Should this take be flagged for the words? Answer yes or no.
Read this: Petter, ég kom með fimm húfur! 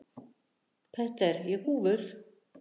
yes